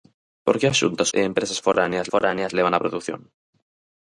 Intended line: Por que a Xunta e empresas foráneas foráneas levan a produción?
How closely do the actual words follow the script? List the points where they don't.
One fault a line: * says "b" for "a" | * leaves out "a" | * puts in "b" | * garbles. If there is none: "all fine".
all fine